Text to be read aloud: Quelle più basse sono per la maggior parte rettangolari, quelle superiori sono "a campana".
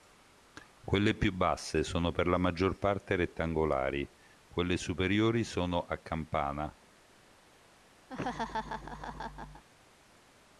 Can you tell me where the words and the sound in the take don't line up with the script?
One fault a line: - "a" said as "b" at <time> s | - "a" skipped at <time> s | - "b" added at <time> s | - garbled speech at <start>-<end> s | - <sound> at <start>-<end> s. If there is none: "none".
- laugh at 8.1-9.6 s